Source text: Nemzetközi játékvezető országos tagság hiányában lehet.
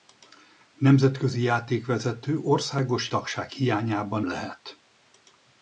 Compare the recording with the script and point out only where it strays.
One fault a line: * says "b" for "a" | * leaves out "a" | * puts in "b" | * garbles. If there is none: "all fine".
all fine